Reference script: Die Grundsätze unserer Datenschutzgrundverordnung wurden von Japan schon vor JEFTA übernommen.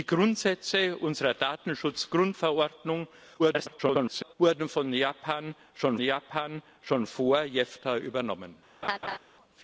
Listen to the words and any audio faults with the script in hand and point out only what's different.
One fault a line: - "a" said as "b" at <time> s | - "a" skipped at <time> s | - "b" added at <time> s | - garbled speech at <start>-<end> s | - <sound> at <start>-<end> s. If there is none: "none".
- garbled speech at 3.4-4.3 s
- "Japan schon" added at 6.0 s
- laugh at 8.8-9.2 s